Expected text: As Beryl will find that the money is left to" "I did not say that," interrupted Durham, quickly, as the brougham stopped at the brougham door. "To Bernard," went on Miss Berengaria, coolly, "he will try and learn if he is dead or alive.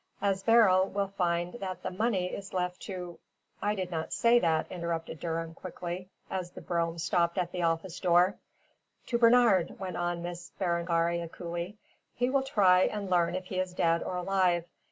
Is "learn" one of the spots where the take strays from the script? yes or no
no